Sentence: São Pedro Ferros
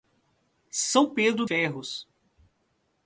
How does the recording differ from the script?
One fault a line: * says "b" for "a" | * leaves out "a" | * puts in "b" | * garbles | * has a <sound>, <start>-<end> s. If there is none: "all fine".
all fine